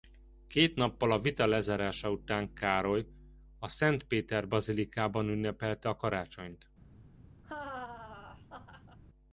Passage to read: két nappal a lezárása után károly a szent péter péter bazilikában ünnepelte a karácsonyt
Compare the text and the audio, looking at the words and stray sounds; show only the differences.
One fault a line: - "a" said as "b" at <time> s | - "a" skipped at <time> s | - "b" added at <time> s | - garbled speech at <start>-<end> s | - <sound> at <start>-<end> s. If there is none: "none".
- "vita" added at 1.2 s
- "péter" skipped at 4.5 s
- laugh at 7.4-9.0 s